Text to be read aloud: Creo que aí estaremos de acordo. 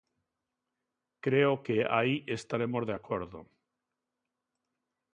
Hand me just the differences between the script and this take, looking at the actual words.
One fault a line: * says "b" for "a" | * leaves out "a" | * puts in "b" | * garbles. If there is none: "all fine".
all fine